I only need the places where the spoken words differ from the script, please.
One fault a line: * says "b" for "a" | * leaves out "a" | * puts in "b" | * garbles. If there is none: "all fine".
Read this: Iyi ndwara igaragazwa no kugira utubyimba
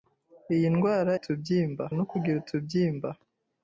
* says "utubyimba" for "igaragazwa"